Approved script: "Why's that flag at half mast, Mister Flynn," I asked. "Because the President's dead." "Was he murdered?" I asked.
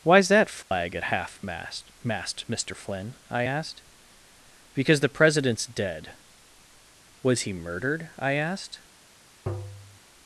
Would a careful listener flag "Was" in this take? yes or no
no